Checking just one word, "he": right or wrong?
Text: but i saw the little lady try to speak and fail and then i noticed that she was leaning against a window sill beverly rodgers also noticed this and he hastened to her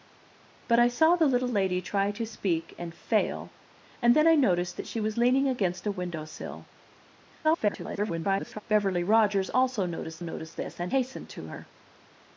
wrong